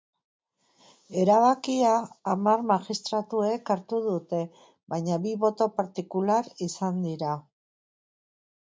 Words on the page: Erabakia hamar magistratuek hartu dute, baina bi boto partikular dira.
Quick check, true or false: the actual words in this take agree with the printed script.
false